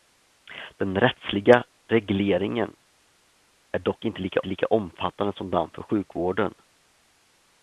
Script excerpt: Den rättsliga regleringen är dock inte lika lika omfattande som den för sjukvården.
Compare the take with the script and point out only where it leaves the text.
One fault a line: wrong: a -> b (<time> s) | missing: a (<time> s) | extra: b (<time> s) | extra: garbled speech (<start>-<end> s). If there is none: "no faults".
no faults